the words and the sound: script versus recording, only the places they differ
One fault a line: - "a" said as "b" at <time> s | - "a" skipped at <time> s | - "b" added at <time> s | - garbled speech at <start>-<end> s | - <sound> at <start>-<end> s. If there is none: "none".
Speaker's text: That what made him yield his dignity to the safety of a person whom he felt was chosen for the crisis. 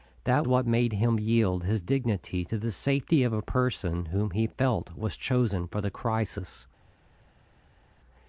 none